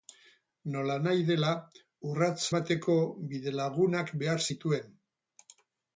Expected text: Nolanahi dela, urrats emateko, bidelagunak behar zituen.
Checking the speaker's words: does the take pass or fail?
pass